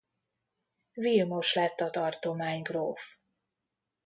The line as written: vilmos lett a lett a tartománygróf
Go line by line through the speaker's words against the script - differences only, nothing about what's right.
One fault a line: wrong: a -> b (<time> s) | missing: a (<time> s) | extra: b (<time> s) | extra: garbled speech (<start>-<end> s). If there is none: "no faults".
missing: lett a (1.9 s)